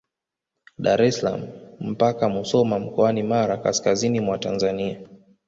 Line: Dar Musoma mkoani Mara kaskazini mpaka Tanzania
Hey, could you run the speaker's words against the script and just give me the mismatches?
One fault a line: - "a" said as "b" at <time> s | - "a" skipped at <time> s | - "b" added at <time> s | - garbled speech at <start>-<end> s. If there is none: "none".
- "es salaam mpaka" added at 1.0 s
- "mpaka" said as "mwa" at 4.2 s